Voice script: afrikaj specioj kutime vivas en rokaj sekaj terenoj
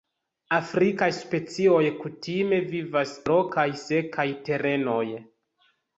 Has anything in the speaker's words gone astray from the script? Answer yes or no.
yes